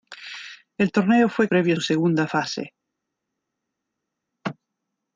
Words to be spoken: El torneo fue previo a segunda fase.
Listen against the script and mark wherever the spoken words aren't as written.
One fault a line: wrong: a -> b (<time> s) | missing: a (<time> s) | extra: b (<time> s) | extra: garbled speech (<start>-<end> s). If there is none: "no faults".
no faults